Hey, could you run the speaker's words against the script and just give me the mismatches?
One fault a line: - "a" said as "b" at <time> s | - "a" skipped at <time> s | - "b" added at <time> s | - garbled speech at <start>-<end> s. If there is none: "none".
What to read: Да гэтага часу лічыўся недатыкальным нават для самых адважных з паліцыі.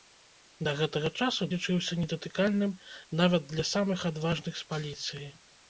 none